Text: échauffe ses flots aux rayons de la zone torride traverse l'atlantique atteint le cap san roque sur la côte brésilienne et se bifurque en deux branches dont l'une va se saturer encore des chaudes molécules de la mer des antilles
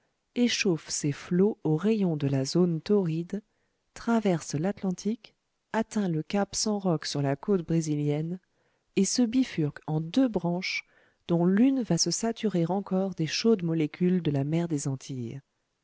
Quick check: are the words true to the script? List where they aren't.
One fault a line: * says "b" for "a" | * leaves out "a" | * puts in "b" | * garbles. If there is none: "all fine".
all fine